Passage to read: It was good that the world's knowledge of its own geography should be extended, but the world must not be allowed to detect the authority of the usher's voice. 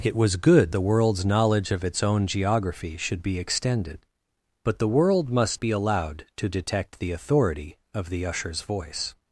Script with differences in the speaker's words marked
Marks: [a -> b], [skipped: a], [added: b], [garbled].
It was good [skipped: that] the world's knowledge of its own geography should be extended, but the world must [skipped: not] be allowed to detect the authority of the usher's voice.